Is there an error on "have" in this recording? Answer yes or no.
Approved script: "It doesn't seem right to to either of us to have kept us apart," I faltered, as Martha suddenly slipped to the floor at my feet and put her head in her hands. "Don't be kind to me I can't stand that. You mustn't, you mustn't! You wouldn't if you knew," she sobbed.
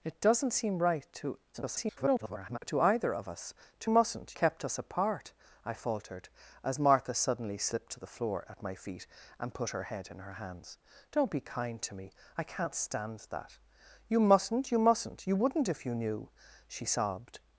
yes